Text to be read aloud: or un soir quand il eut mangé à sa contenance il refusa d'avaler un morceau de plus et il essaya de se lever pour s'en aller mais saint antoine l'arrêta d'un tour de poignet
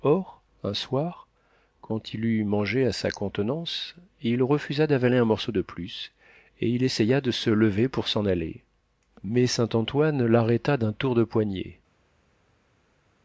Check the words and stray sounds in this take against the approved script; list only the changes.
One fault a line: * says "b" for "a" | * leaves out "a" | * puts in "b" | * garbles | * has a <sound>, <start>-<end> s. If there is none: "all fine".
all fine